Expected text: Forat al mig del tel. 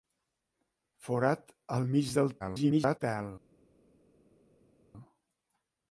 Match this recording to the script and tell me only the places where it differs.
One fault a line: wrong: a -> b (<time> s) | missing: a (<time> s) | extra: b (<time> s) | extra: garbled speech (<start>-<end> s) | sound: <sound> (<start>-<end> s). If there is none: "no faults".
extra: garbled speech (2.4-3.0 s)